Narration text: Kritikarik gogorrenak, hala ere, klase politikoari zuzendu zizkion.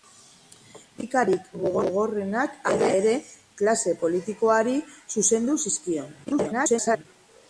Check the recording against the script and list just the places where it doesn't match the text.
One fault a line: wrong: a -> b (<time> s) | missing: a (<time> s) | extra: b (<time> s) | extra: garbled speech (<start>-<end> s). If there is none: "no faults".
extra: garbled speech (6.2-7.1 s)